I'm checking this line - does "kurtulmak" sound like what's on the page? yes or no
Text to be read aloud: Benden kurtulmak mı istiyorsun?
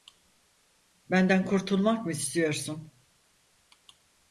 yes